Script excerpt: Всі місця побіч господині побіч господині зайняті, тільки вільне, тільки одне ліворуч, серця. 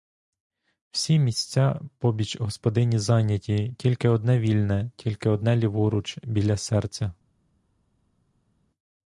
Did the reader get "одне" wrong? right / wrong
right